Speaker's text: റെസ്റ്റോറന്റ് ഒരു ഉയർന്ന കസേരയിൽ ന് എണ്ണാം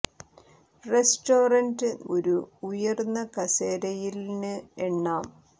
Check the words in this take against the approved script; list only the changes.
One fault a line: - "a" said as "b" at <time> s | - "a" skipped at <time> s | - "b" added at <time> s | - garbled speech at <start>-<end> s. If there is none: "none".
none